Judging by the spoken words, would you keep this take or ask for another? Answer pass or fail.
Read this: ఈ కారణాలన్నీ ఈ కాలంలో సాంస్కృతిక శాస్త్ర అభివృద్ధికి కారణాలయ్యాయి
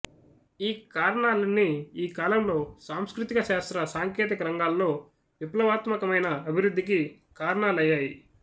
fail